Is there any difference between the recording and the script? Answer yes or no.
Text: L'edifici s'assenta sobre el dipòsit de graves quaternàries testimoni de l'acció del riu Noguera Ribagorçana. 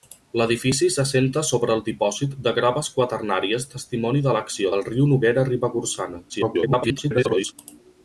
yes